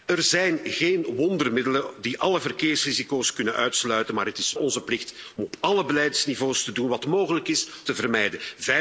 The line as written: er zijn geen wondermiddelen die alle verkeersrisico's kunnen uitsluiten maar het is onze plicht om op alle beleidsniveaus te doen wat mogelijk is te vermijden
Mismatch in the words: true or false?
false